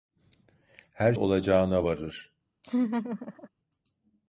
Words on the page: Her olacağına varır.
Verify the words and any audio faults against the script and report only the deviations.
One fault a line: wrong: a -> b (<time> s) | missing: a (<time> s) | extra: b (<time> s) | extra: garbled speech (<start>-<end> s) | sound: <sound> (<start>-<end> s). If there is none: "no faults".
sound: laugh (2.6-3.5 s)